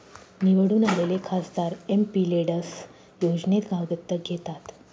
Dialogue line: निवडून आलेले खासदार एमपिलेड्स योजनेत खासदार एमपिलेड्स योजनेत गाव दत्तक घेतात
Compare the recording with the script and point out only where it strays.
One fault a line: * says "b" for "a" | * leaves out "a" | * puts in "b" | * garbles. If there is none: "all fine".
* leaves out "खासदार एमपिलेड्स योजनेत"